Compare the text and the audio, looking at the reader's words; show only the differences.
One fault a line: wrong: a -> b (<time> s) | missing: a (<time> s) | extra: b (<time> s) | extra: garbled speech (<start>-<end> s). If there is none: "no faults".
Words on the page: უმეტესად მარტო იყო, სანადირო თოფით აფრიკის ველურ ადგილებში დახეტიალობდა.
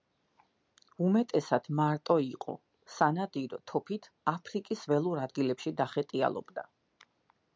no faults